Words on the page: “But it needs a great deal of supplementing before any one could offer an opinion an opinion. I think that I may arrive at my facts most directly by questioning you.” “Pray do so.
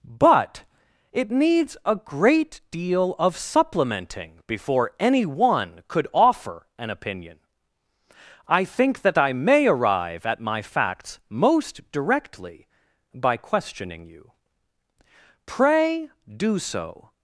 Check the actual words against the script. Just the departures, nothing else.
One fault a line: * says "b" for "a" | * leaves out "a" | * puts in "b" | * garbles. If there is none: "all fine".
* leaves out "an opinion"